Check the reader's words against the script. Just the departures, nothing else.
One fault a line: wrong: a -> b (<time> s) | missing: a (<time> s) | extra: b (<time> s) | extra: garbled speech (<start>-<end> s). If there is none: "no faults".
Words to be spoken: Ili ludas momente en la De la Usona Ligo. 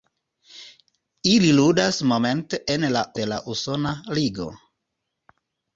no faults